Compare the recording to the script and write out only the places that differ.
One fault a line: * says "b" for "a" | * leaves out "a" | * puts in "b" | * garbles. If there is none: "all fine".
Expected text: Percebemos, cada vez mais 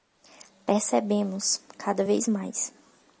all fine